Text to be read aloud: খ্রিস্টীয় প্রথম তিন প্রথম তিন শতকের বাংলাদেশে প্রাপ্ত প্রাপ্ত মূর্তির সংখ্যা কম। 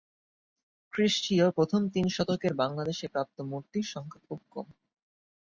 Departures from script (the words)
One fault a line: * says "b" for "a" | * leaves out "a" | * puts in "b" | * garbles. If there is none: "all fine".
* leaves out "প্রথম তিন"
* leaves out "প্রাপ্ত"
* puts in "খুব"